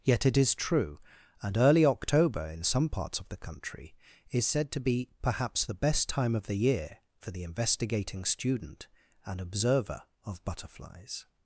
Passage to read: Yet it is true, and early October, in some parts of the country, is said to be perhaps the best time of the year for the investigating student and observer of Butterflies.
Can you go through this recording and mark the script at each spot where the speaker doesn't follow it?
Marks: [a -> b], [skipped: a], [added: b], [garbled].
Yet it is true, and early October, in some parts of the country, is said to be perhaps the best time of the year for the investigating student and observer of Butterflies.